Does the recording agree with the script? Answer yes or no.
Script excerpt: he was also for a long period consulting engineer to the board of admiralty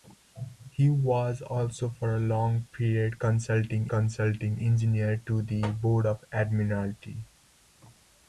no